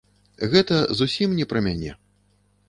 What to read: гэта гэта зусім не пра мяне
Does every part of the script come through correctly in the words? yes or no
no